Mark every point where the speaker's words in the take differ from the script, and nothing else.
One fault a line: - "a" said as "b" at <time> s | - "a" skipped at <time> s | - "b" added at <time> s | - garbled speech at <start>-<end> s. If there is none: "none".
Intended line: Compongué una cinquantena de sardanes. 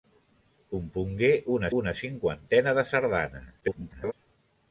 - "una" added at 1.8 s
- garbled speech at 3.6-4.1 s